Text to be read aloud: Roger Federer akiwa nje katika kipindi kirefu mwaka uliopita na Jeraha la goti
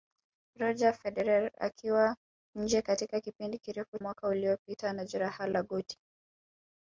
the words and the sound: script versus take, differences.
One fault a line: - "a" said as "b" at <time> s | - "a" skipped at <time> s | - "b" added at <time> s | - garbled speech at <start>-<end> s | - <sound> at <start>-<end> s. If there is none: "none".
none